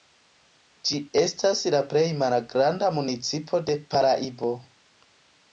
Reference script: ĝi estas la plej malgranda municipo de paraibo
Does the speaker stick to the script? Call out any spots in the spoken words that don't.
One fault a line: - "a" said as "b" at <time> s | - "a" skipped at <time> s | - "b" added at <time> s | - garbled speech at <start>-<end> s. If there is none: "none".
none